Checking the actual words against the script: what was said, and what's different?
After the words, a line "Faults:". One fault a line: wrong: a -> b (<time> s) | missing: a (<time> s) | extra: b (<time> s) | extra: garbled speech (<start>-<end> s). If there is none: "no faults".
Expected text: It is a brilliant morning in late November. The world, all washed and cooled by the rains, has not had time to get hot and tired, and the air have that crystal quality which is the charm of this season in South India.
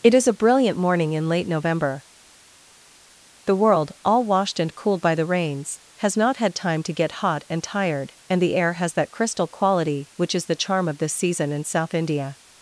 It is a brilliant morning in late November. The world, all washed and cooled by the rains, has not had time to get hot and tired, and the air has that crystal quality which is the charm of this season in South India.
Faults:
wrong: have -> has (8.7 s)